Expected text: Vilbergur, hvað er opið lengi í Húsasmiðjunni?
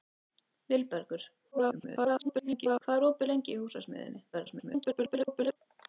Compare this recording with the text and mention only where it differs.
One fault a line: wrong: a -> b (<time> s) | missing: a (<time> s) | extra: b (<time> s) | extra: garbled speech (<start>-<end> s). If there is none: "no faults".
extra: garbled speech (1.5-2.8 s)
extra: garbled speech (4.3-5.6 s)